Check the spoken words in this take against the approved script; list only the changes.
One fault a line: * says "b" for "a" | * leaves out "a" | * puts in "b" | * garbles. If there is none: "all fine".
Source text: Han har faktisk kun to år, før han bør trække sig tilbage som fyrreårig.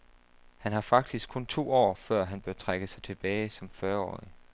all fine